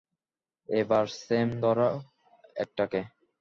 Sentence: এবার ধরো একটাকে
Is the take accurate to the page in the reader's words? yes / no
no